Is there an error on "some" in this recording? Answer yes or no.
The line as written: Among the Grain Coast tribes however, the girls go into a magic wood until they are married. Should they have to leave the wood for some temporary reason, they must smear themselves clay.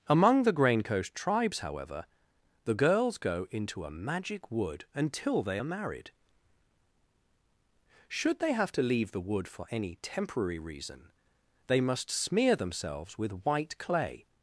yes